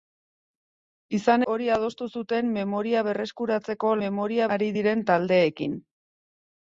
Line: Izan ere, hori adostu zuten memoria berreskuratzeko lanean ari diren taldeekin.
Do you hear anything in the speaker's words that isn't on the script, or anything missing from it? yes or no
yes